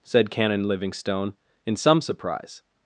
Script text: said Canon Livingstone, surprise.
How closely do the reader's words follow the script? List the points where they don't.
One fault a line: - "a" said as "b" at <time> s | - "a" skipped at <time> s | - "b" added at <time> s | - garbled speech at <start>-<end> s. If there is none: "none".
- "in some" added at 1.6 s